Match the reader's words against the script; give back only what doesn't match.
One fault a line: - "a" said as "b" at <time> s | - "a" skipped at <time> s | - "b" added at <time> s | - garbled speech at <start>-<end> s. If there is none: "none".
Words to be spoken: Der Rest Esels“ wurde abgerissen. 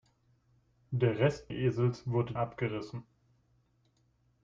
none